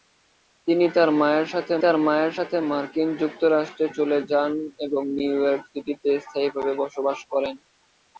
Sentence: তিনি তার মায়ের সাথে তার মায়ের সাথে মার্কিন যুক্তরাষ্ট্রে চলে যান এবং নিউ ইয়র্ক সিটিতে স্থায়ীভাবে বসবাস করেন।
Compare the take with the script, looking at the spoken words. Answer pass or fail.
pass